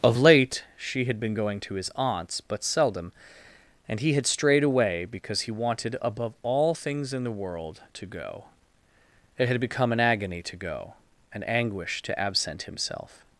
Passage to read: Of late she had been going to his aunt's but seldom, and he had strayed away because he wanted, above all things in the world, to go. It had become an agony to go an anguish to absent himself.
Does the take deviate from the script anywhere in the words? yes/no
no